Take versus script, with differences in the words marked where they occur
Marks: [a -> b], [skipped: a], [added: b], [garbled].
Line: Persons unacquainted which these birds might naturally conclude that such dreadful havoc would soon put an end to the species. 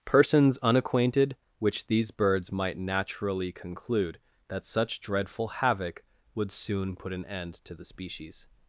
Persons unacquainted which these birds might naturally conclude that such dreadful havoc would soon put an end to the species.